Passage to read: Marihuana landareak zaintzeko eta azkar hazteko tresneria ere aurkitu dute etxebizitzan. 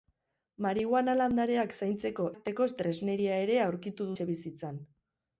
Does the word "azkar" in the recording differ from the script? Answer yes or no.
yes